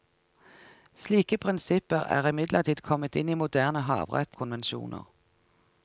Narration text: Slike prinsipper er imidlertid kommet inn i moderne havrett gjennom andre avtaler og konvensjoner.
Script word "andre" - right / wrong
wrong